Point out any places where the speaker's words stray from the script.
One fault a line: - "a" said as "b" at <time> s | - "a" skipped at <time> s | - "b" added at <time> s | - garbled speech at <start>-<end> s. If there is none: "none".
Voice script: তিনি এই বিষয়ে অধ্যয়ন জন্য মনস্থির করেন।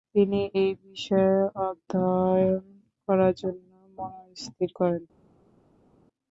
- "করার" added at 3.1 s